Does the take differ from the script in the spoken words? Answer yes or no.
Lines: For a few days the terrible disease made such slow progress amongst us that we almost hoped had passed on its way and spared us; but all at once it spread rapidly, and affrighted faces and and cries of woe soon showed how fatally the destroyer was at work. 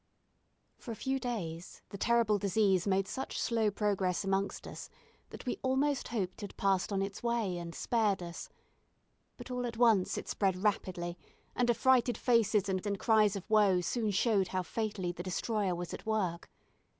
no